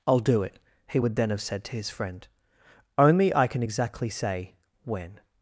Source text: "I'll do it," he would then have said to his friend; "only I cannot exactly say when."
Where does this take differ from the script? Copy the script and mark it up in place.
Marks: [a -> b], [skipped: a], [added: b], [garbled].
"I'll do it," he would then have said to his friend; "only I [cannot -> can] exactly say when."